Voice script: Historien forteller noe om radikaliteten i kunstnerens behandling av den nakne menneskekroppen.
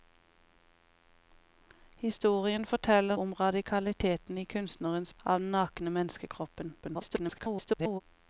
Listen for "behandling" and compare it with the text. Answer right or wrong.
wrong